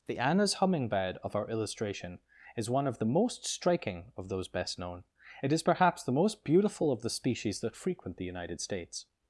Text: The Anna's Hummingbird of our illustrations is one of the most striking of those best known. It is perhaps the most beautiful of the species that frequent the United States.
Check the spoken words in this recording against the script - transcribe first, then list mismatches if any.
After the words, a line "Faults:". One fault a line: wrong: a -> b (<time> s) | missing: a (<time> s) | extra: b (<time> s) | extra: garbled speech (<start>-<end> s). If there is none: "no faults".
The Anna's Hummingbird of our illustration is one of the most striking of those best known. It is perhaps the most beautiful of the species that frequent the United States.
Faults:
wrong: illustrations -> illustration (1.5 s)